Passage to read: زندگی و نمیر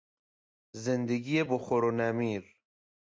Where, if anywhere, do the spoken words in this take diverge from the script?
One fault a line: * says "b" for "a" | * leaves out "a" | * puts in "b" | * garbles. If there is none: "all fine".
* puts in "بخور"